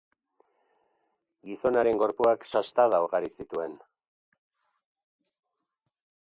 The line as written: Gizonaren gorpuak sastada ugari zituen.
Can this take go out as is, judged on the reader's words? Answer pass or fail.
pass